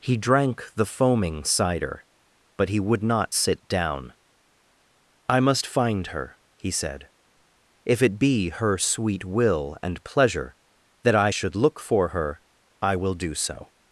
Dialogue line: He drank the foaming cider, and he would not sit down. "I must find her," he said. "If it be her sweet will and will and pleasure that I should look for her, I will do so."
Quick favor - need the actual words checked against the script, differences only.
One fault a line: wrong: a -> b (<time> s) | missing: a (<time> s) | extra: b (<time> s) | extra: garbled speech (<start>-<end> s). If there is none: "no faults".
wrong: and -> but (2.6 s)
missing: will and (10.0 s)